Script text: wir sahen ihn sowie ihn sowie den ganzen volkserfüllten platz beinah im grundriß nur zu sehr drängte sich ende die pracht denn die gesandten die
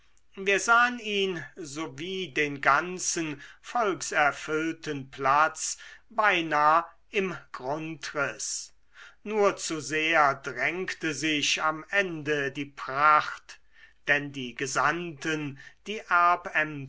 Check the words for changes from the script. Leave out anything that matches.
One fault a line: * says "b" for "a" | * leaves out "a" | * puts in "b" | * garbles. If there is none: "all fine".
* leaves out "ihn sowie"
* puts in "am"